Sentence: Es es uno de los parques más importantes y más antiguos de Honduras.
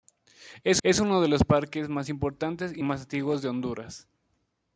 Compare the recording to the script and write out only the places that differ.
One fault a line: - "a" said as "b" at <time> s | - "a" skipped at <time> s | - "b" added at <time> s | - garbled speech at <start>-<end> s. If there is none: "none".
none